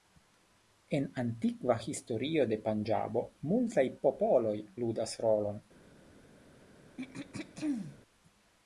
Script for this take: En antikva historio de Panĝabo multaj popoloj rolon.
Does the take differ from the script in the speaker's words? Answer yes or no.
yes